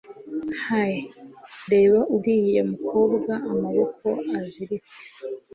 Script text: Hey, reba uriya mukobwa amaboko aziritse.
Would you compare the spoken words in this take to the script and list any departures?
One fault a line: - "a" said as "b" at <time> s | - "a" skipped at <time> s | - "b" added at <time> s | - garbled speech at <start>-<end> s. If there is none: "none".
none